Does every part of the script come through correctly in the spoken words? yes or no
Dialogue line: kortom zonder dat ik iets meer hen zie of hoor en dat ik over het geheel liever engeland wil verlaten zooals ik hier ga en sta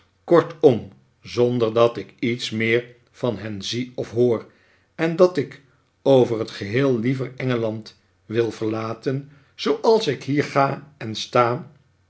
no